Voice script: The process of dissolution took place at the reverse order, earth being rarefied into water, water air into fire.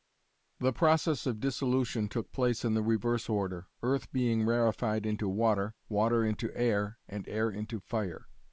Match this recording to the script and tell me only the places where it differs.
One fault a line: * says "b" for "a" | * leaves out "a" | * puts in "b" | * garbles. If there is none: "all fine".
* says "in" for "at"
* puts in "into air and"